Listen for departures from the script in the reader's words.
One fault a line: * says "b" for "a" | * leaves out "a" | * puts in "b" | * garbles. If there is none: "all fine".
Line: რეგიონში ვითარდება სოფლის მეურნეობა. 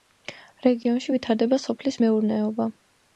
all fine